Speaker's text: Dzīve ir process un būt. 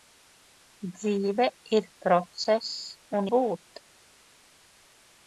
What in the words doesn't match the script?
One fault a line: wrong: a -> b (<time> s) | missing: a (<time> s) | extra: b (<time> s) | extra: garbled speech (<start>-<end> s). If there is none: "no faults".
no faults